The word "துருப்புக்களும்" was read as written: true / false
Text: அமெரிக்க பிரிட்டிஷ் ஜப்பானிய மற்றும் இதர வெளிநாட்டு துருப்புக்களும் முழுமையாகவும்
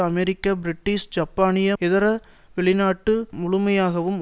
false